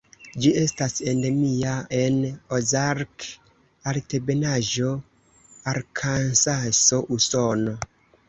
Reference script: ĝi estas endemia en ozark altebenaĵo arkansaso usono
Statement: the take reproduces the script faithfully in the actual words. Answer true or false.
true